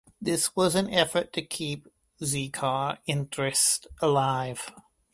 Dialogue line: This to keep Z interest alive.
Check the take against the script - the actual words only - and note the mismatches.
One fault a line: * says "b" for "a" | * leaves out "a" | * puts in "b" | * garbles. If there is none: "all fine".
* puts in "was an effort"
* puts in "car"